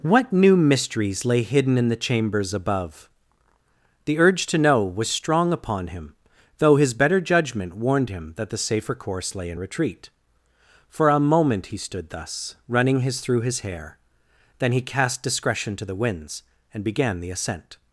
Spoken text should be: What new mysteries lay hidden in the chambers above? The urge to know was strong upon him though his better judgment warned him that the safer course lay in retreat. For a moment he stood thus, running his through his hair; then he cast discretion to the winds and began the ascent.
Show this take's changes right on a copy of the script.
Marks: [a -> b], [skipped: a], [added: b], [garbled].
What new mysteries lay hidden in the chambers above? The urge to know was strong upon him though his better judgment warned him that the safer course lay in retreat. For a moment he stood thus, running his through his hair; then he cast discretion to the winds and began the ascent.